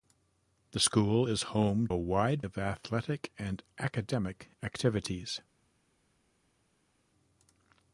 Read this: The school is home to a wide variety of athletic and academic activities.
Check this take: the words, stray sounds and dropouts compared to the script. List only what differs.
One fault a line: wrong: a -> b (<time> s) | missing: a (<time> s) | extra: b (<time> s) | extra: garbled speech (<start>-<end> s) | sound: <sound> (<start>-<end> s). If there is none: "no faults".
missing: to (1.9 s)
missing: variety (2.4 s)